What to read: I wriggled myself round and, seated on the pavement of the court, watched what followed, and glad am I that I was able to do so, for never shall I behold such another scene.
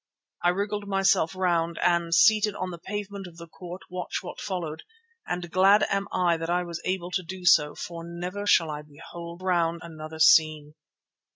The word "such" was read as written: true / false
false